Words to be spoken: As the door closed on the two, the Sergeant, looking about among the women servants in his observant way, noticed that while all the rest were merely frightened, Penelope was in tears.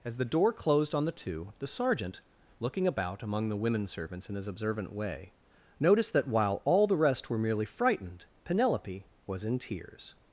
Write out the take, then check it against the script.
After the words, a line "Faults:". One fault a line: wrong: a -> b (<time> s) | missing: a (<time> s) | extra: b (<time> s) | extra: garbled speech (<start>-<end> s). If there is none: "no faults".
As the door closed on the two, the Sergeant, looking about among the women servants in his observant way, noticed that while all the rest were merely frightened, Penelope was in tears.
Faults:
no faults